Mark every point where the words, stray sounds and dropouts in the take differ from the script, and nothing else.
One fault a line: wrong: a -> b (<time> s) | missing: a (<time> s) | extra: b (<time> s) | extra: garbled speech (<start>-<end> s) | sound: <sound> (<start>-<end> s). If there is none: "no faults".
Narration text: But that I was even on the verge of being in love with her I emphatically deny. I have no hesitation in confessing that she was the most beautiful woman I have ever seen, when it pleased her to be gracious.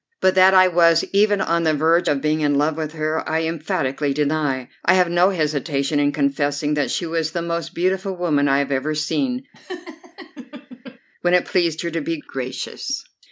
sound: laugh (9.5-11.0 s)